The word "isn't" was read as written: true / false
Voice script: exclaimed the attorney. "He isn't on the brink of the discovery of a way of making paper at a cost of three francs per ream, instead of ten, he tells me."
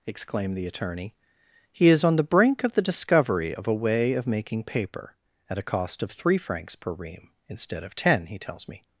false